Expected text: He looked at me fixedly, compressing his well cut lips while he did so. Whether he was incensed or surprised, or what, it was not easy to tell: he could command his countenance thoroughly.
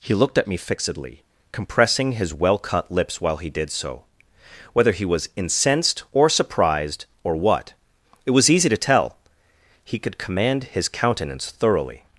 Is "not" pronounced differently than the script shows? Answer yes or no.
yes